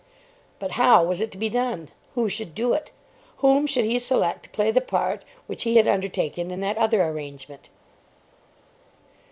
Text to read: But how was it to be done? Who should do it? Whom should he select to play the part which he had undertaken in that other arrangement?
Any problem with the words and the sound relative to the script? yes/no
no